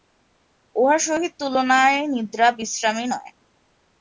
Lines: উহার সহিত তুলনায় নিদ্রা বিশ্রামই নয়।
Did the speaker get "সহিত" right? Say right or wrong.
right